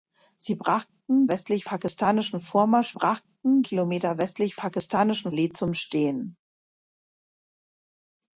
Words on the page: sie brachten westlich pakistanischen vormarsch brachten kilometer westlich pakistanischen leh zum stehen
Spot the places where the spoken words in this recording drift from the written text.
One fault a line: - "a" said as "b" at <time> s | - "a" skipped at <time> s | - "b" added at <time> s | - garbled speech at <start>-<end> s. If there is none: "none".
none